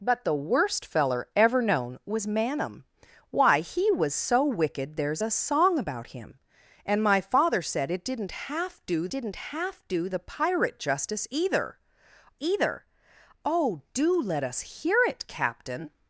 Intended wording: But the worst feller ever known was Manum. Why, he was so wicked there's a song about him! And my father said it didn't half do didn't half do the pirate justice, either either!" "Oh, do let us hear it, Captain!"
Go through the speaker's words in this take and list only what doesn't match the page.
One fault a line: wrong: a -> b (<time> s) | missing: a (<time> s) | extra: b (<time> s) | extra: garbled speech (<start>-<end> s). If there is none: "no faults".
no faults